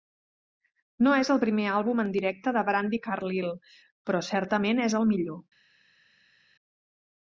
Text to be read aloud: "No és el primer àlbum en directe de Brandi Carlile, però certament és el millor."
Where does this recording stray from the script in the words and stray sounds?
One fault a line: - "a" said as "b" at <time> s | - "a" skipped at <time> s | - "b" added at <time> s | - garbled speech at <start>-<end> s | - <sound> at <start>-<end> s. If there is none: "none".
none